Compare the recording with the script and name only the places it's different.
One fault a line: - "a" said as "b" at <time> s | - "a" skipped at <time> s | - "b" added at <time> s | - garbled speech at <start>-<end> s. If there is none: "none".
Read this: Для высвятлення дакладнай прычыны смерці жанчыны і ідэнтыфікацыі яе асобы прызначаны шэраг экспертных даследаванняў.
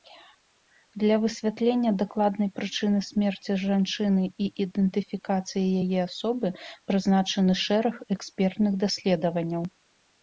none